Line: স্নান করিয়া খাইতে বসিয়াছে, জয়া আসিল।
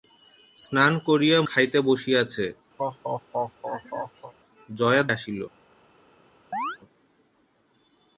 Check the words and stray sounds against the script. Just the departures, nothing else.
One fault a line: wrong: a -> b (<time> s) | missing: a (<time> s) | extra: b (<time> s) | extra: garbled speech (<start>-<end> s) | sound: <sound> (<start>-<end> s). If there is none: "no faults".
sound: laugh (2.8-4.3 s)
sound: chirp (6.5-6.8 s)